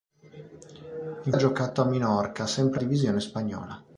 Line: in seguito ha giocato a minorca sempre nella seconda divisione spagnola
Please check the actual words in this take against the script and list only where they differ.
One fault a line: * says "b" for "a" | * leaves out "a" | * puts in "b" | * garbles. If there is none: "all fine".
* leaves out "seguito"
* leaves out "nella seconda"